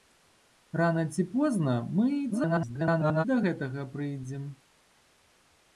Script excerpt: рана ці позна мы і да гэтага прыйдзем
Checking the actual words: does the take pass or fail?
fail